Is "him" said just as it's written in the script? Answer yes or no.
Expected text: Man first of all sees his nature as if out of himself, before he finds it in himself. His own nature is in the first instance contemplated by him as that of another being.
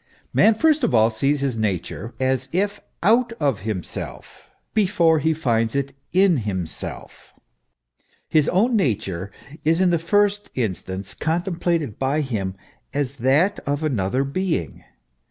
yes